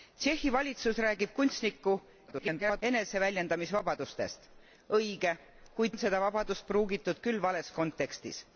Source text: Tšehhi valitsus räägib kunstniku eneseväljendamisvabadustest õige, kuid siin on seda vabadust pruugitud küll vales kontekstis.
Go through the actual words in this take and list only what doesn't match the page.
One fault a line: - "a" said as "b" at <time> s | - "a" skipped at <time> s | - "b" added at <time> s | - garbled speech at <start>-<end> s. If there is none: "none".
- garbled speech at 2.3-2.8 s
- "siin" skipped at 6.0 s